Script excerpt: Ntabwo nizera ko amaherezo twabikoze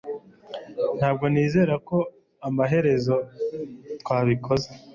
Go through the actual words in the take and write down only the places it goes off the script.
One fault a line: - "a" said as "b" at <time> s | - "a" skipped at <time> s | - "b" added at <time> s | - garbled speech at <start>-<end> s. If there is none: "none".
none